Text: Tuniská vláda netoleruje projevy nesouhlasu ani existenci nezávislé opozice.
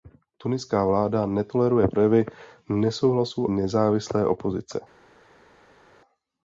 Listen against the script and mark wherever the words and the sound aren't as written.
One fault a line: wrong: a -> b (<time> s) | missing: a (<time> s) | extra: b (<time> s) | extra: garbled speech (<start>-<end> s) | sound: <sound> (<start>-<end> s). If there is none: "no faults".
missing: ani existenci (3.5 s)